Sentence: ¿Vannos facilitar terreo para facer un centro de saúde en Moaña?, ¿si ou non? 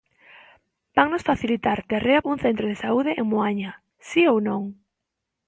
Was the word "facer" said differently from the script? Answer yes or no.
yes